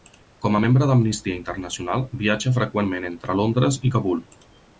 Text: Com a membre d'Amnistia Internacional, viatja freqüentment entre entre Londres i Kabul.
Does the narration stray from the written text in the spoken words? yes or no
yes